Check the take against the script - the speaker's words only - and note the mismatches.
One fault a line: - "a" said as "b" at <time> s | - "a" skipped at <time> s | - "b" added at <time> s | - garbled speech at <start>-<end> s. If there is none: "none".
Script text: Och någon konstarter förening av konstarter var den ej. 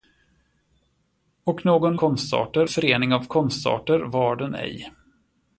none